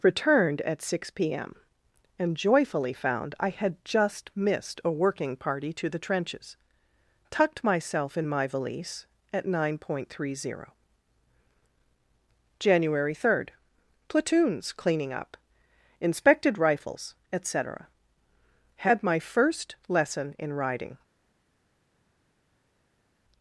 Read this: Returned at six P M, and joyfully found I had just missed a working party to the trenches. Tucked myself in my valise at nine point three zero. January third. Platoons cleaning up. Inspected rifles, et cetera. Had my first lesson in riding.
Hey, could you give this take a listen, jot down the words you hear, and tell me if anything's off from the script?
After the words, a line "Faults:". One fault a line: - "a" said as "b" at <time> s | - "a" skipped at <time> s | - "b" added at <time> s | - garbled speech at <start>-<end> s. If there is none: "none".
Returned at six P M, and joyfully found I had just missed a working party to the trenches. Tucked myself in my valise at nine point three zero. January third. Platoons cleaning up. Inspected rifles, et cetera. Had my first lesson in riding.
Faults:
none